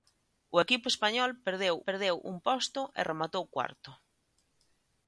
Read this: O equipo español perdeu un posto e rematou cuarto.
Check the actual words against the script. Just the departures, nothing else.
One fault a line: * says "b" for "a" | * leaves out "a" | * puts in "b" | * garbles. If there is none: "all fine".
* puts in "perdeu"